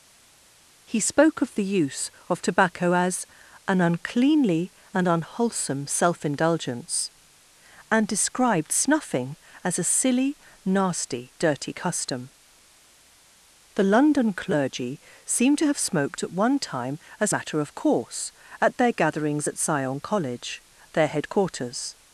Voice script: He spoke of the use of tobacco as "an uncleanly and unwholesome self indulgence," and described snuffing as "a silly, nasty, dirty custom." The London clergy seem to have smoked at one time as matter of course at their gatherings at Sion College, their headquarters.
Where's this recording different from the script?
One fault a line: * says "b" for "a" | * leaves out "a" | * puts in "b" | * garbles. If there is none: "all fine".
all fine